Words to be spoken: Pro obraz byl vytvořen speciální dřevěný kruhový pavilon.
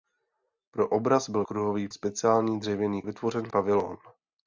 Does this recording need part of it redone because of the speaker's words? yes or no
yes